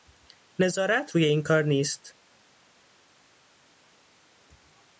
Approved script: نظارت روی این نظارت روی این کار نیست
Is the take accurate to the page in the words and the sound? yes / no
no